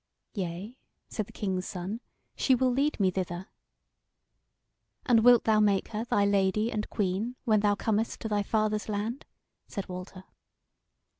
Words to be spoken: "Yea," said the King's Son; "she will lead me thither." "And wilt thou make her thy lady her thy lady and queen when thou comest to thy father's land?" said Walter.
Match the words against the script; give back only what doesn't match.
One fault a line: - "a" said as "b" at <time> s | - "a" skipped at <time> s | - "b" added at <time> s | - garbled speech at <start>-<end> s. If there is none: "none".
- "her thy lady" skipped at 6.7 s